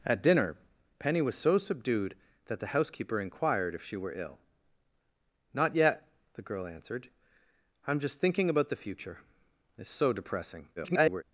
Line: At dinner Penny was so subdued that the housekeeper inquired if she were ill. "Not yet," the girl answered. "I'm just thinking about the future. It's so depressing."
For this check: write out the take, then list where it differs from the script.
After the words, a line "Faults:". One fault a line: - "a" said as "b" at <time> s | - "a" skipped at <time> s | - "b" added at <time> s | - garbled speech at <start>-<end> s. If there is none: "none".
At dinner Penny was so subdued that the housekeeper inquired if she were ill. "Not yet," the girl answered. "I'm just thinking about the future. It's so depressing." [garbled]
Faults:
- garbled speech at 10.8-11.2 s